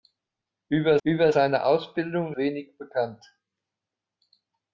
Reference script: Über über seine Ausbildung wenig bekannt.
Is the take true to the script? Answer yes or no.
yes